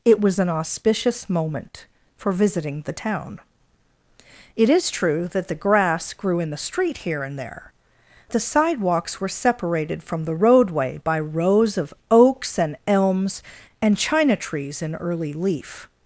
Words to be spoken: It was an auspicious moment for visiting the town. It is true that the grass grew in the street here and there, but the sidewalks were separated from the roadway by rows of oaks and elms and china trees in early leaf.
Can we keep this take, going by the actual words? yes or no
no